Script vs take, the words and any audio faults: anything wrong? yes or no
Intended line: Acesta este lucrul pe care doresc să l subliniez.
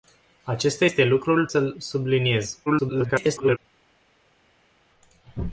yes